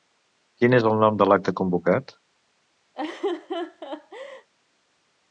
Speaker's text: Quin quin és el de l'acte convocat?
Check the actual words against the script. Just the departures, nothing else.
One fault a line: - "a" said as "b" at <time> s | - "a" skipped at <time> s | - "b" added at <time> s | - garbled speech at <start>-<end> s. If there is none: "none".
- "quin" skipped at 0.8 s
- "nom" added at 1.0 s